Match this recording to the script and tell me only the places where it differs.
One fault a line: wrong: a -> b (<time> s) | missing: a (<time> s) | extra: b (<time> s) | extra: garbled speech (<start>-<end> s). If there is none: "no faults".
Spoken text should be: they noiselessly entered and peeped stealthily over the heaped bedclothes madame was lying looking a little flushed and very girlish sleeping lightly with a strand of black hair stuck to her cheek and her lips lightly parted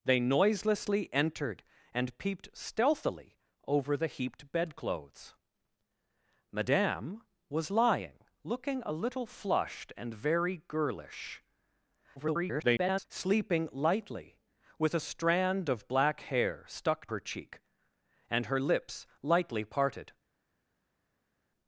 extra: garbled speech (12.2-13.1 s)
missing: to (17.1 s)